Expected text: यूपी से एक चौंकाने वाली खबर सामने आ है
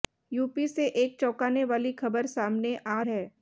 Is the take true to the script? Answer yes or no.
yes